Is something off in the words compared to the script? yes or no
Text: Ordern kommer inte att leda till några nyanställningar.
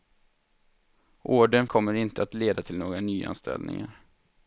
no